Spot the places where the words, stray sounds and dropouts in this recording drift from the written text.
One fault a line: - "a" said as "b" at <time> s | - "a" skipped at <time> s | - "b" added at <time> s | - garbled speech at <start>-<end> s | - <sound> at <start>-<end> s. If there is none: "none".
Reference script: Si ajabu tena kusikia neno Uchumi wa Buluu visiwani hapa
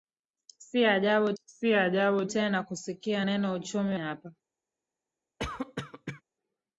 - "si ajabu" added at 1.4 s
- "wa Buluu visiwani" skipped at 3.9 s
- cough at 5.4-6.2 s